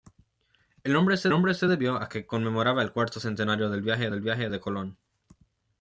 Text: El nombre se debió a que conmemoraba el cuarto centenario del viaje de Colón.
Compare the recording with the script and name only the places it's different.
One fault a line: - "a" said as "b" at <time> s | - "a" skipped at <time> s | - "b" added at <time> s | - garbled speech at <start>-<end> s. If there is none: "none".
- "nombre se" added at 1.3 s
- "del viaje" added at 4.1 s